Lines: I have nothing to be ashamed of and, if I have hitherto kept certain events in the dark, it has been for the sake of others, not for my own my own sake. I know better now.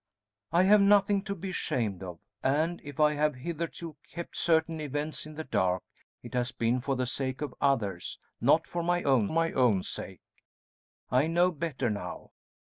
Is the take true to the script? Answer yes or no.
yes